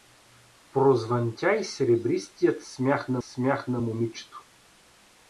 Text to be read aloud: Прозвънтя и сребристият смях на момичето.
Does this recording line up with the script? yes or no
no